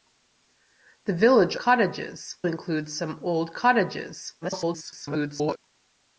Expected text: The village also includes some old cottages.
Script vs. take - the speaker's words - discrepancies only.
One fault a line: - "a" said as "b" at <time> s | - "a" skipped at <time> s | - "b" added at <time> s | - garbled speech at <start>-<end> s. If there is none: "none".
- "also" said as "cottages" at 1.5 s
- garbled speech at 4.4-5.6 s